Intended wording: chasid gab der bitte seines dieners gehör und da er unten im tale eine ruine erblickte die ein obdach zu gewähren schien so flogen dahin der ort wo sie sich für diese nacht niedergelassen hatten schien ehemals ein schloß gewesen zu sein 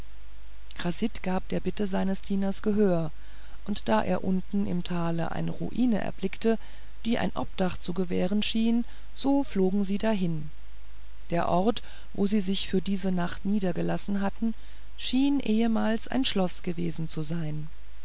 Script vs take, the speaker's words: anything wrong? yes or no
yes